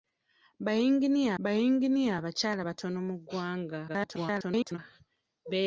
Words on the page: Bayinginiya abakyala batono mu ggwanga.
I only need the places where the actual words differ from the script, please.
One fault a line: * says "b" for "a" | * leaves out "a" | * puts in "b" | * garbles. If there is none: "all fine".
* puts in "bayinginiya"
* garbles